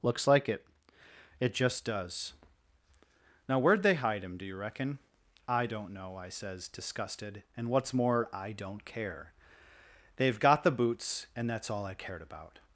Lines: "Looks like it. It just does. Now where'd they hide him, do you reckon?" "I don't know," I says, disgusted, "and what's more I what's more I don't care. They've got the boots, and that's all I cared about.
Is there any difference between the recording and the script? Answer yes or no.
yes